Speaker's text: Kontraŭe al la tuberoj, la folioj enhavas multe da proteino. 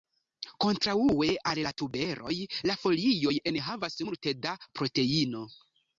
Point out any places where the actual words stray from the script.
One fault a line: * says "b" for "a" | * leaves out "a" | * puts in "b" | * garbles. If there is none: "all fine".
all fine